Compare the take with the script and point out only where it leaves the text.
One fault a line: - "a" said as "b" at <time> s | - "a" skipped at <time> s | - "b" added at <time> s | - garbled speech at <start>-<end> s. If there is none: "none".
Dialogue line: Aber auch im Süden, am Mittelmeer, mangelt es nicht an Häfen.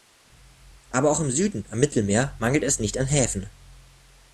none